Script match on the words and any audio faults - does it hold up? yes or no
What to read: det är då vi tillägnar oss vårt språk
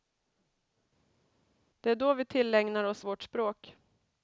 yes